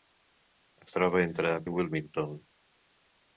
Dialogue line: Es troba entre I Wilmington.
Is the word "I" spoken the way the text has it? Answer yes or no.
yes